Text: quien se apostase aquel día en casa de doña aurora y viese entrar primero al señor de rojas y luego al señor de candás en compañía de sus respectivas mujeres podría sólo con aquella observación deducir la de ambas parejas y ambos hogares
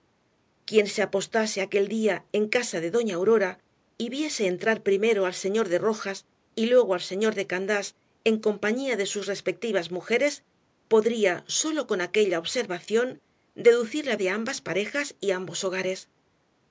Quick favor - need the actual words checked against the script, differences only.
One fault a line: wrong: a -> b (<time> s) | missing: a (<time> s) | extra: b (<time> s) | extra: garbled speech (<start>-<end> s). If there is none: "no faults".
no faults